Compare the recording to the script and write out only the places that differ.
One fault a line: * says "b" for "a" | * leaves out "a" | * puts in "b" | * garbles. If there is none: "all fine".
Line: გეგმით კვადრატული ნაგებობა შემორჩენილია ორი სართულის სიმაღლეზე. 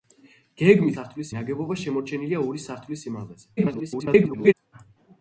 * says "სართულის" for "კვადრატული"
* garbles